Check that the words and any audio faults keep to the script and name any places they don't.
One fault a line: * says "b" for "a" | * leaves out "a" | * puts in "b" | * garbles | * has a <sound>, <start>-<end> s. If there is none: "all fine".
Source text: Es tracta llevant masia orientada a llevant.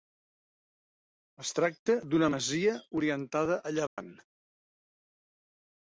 * says "d'una" for "llevant"
* has a dropout, 3.9-4.0 s